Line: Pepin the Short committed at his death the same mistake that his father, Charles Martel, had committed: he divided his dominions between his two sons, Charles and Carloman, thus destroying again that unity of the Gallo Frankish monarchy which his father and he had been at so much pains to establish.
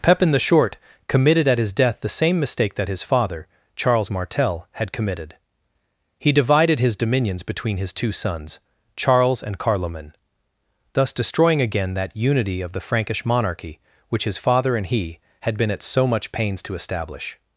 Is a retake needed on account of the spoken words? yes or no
yes